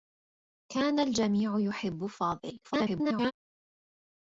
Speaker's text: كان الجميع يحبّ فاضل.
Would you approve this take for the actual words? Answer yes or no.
no